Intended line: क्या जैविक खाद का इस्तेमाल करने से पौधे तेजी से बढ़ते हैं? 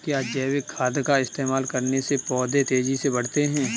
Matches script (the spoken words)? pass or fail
pass